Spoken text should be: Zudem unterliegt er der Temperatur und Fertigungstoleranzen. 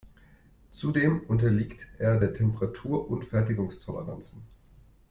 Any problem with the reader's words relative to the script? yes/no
no